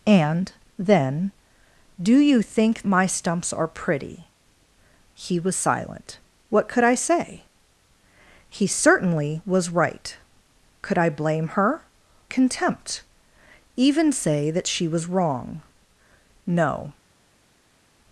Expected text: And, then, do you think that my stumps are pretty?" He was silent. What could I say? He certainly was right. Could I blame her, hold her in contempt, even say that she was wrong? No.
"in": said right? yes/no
no